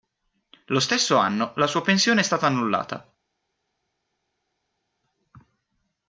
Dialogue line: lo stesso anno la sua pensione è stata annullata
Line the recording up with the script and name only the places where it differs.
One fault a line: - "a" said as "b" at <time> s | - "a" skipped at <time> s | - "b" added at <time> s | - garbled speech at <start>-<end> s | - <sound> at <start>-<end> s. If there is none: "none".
none